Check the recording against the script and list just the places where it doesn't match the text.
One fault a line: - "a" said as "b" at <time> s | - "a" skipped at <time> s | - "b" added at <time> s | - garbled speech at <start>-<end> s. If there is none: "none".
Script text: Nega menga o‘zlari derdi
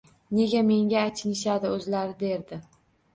- "achinishadi" added at 1.1 s